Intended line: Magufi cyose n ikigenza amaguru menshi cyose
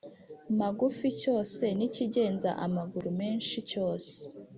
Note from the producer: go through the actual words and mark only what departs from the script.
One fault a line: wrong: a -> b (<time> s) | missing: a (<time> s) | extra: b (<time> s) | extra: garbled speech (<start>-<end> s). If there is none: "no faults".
no faults